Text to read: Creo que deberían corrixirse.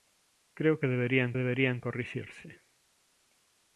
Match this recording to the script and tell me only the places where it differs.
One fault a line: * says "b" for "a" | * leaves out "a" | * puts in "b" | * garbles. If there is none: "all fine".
* puts in "deberían"